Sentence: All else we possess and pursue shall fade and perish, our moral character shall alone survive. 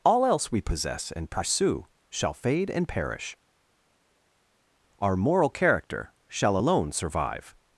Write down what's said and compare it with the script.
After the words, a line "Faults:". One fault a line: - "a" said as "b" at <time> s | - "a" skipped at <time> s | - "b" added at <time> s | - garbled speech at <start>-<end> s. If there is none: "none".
All else we possess and pursue shall fade and perish, our moral character shall alone survive.
Faults:
none